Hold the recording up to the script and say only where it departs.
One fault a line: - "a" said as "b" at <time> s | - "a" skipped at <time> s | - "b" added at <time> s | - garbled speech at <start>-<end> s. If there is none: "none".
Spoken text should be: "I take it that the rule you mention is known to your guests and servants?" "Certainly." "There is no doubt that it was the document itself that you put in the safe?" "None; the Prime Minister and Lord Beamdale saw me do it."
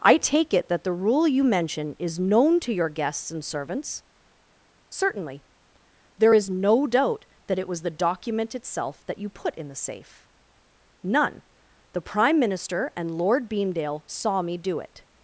none